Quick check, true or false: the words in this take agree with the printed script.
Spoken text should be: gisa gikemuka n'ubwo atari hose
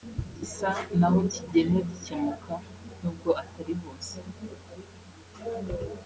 false